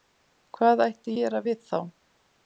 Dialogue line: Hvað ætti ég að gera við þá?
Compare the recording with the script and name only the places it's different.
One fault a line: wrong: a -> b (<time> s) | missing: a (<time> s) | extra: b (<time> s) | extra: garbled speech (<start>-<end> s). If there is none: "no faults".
missing: ég að (1.1 s)